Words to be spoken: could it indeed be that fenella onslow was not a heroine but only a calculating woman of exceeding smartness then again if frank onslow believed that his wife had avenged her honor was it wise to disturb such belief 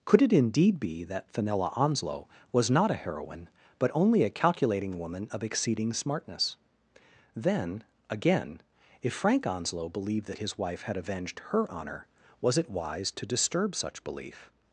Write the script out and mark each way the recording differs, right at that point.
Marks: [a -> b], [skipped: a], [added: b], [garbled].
could it indeed be that fenella onslow was not a heroine but only a calculating woman of exceeding smartness then again if frank onslow believed that his wife had avenged her honor was it wise to disturb such belief